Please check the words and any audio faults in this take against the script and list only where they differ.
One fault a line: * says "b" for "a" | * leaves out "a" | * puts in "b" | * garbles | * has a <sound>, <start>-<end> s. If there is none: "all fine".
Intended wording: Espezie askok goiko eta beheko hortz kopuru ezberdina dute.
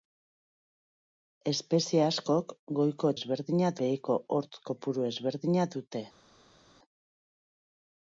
* says "ezberdina" for "eta"